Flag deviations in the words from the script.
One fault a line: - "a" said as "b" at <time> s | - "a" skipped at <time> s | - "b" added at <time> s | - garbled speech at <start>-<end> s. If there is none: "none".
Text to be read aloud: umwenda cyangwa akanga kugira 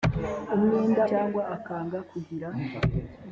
none